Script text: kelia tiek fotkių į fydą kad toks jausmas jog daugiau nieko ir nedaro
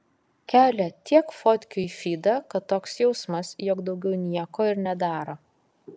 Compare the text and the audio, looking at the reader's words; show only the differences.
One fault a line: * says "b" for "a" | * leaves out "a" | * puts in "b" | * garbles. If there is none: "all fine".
all fine